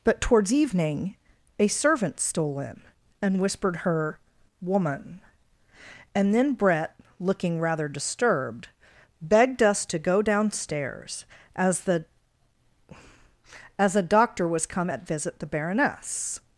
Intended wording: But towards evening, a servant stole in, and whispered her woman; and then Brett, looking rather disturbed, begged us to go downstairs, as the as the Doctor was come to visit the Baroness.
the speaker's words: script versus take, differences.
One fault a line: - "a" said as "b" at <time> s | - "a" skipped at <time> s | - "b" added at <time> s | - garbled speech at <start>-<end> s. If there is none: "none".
- "the" said as "a" at 13.9 s
- "to" said as "at" at 14.9 s